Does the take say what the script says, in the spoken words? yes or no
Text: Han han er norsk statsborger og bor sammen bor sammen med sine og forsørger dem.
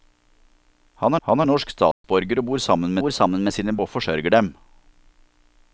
yes